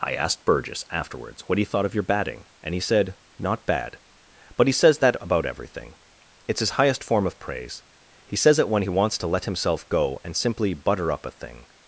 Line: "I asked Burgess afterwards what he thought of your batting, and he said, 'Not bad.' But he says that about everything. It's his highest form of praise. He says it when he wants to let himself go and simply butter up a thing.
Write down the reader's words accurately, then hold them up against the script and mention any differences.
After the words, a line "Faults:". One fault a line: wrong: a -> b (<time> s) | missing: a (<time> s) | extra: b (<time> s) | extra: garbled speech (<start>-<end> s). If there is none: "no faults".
"I asked Burgess afterwards what he thought of your batting, and he said, 'Not bad.' But he says that about everything. It's his highest form of praise. He says it when he wants to let himself go and simply butter up a thing.
Faults:
no faults